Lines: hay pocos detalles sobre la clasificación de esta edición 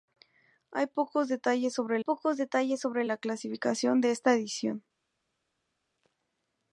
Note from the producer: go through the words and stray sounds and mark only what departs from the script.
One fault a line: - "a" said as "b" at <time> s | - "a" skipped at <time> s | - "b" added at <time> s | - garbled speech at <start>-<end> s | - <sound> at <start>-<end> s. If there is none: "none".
- "pocos detalles sobre" added at 2.0 s